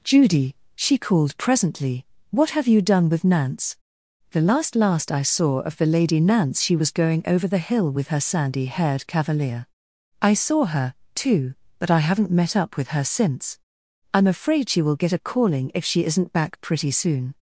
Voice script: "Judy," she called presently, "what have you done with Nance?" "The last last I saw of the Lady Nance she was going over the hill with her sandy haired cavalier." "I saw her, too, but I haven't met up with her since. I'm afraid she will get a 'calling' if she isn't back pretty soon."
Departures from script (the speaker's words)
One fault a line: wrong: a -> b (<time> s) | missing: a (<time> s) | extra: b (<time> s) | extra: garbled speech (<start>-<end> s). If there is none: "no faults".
no faults